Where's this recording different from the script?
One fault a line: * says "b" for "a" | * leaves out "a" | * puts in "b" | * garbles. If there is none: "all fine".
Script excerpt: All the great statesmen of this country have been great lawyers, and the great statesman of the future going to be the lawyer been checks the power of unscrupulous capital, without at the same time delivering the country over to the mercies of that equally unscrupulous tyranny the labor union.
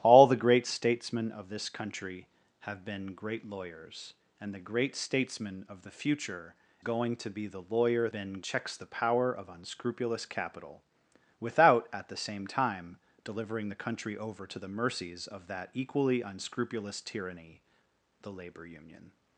all fine